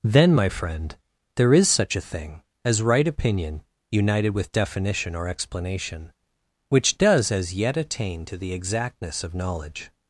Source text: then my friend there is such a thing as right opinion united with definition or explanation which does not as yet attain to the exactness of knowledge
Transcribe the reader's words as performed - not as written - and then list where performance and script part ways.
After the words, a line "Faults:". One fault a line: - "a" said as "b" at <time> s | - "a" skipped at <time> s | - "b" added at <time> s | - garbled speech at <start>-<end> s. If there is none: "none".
then my friend there is such a thing as right opinion united with definition or explanation which does as yet attain to the exactness of knowledge
Faults:
- "not" skipped at 7.3 s